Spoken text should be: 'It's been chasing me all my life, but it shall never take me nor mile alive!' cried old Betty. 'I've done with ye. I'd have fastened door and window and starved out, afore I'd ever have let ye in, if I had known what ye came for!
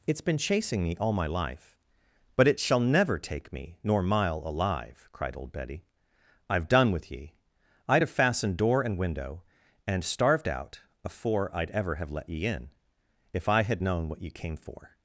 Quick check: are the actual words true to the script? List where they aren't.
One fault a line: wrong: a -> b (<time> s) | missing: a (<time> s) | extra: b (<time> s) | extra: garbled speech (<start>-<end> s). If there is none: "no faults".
no faults